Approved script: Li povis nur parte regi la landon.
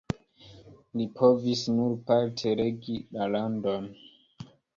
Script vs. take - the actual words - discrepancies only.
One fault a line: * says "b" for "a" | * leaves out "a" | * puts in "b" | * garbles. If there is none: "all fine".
all fine